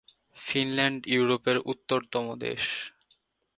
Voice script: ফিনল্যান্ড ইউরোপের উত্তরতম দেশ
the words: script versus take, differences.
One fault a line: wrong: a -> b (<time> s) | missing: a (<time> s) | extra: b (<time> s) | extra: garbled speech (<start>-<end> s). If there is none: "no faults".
no faults